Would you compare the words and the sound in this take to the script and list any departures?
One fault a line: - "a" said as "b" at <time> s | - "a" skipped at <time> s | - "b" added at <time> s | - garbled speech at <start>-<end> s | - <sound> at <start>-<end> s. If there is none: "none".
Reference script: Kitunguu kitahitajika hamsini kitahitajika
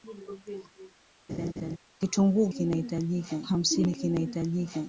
- laugh at 1.3-1.8 s